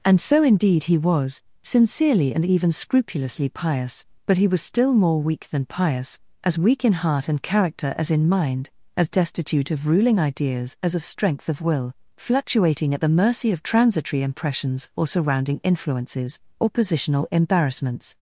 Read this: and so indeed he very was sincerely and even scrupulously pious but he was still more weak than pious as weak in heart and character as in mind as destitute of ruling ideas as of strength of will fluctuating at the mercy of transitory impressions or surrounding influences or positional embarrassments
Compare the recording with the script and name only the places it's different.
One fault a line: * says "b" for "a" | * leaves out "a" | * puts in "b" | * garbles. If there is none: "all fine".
* leaves out "very"